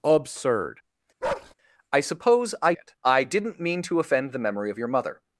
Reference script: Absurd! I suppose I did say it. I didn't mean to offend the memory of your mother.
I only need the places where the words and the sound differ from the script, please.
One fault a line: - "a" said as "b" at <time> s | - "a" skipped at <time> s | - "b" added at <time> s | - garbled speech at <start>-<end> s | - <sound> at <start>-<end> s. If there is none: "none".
- bark at 1.2-1.5 s
- "did say" skipped at 2.7 s